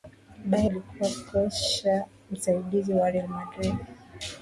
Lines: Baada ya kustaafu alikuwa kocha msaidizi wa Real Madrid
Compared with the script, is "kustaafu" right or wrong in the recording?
wrong